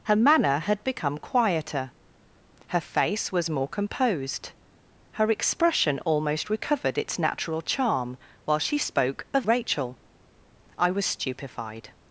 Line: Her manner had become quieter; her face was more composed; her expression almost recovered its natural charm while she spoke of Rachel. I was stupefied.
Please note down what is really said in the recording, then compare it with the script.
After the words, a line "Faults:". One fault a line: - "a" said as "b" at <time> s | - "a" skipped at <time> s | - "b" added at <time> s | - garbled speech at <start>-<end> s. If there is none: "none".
Her manner had become quieter; her face was more composed; her expression almost recovered its natural charm while she spoke of Rachel. I was stupefied.
Faults:
none